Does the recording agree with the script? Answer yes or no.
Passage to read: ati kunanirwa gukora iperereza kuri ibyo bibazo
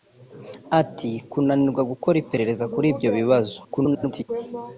no